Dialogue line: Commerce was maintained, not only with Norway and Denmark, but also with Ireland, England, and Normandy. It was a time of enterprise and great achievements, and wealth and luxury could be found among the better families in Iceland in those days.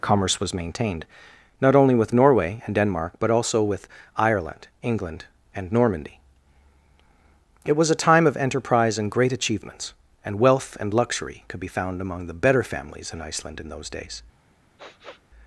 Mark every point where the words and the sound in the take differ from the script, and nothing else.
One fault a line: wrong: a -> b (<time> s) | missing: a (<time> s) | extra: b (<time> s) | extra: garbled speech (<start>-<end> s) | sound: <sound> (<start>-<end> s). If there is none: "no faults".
sound: sniff (14.8-15.2 s)